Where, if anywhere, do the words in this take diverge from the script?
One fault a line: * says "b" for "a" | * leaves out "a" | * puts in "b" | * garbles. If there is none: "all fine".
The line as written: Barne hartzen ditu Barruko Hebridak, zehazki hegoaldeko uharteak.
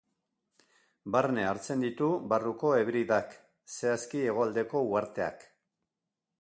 all fine